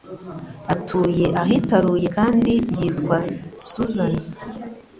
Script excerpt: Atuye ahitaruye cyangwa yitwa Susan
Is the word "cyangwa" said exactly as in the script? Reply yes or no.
no